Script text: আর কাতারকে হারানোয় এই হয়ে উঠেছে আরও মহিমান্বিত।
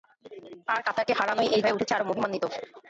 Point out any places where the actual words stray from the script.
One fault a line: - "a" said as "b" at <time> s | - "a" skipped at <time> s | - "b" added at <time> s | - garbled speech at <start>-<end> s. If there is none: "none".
none